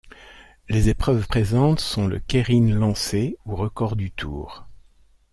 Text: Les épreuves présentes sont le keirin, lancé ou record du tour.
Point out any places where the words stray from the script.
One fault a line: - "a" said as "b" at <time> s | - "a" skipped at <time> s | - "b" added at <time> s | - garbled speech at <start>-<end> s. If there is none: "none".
none